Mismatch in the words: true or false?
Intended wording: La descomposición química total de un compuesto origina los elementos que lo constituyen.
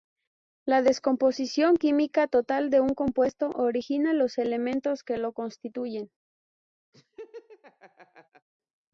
false